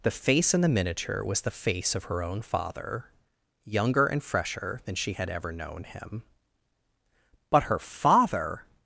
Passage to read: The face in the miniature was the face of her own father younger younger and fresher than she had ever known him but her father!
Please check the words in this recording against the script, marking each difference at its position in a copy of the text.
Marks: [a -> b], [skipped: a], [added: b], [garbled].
The face in the miniature was the face of her own father younger [skipped: younger] and fresher than she had ever known him but her father!